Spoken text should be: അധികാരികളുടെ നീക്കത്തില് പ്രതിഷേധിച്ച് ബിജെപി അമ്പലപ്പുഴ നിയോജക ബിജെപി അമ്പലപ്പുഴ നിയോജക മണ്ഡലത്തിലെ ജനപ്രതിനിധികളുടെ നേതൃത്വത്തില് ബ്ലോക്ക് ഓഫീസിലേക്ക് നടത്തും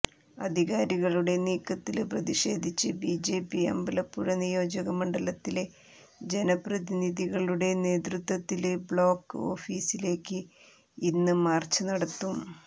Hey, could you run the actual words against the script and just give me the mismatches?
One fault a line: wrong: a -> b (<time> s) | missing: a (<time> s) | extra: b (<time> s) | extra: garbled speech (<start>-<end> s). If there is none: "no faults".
missing: ബിജെപി അമ്പലപ്പുഴ നിയോജക (5.0 s)
extra: ഇന്ന് മാര്ച്ച് (11.1 s)